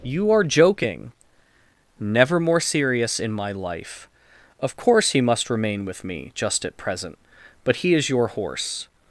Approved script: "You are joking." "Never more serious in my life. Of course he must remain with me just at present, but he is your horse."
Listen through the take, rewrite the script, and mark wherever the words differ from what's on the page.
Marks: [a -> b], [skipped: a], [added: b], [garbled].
"You are joking." "Never more serious in my life. Of course he must remain with me just at present, but he is your horse."